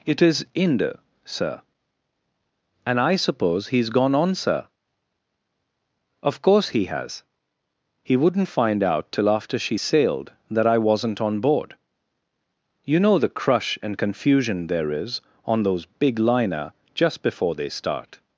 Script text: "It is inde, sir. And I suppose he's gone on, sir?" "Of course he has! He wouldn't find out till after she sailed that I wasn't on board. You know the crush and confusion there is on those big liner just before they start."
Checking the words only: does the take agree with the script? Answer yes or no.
yes